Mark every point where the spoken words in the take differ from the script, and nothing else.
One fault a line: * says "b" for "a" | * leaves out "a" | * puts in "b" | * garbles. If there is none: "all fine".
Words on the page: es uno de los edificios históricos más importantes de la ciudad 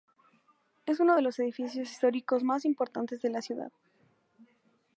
all fine